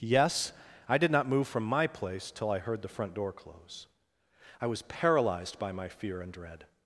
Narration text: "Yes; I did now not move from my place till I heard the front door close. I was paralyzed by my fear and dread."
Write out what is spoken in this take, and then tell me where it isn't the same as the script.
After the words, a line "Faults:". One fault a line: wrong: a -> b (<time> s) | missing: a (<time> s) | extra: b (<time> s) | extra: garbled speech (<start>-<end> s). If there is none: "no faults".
"Yes; I did not move from my place till I heard the front door close. I was paralyzed by my fear and dread."
Faults:
missing: now (1.1 s)